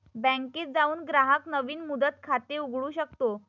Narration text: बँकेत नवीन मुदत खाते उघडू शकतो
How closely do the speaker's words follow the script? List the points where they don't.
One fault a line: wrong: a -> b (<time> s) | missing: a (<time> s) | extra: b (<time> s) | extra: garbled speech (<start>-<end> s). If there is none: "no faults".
extra: जाऊन ग्राहक (0.7 s)